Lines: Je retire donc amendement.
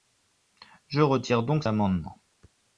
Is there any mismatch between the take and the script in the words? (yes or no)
no